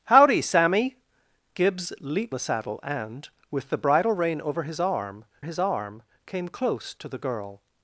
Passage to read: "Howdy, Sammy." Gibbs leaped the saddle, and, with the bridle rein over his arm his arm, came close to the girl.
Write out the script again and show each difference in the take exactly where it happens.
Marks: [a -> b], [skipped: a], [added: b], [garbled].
"Howdy, Sammy." Gibbs leaped the saddle, and, with the bridle rein over his arm his arm, came close to the girl.